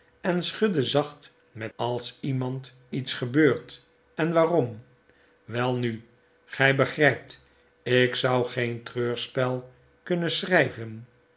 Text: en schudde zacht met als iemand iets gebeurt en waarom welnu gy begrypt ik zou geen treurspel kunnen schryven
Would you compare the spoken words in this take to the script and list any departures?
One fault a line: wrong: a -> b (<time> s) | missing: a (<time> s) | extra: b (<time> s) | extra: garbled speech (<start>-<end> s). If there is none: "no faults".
no faults